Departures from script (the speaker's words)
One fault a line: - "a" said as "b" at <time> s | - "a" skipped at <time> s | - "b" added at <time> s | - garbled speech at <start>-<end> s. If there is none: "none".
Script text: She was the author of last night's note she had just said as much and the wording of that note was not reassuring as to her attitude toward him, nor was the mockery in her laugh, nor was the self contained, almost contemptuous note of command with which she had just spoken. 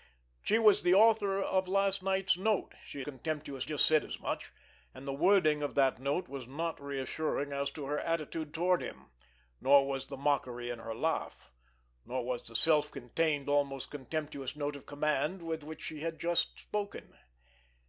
- "had" said as "contemptuous" at 3.0 s